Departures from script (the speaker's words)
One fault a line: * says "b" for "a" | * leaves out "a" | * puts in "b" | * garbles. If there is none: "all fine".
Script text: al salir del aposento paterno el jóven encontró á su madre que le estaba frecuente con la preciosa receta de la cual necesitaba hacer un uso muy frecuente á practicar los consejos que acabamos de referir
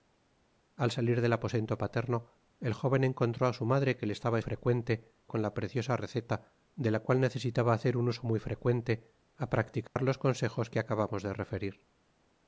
all fine